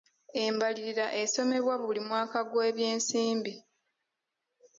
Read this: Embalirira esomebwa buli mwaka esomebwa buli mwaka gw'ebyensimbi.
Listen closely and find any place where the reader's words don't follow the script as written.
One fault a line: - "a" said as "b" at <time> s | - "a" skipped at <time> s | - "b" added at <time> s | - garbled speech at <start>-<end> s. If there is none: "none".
- "esomebwa buli mwaka" skipped at 2.4 s